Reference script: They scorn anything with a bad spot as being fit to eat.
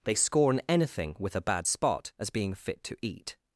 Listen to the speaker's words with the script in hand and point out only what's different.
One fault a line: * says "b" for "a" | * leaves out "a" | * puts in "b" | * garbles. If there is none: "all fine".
all fine